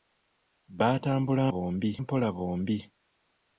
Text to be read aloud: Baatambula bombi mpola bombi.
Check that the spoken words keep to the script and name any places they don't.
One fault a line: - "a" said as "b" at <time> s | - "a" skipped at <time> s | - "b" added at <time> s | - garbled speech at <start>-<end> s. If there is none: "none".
none